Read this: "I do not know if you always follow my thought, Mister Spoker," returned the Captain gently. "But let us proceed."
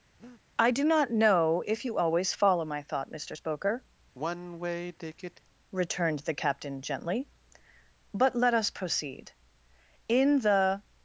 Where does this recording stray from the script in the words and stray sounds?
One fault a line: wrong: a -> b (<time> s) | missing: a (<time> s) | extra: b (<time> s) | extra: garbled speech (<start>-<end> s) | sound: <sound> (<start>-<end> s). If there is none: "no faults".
sound: breath (0.2-0.4 s)
sound: sigh (4.1-5.4 s)
extra: In the (10.1 s)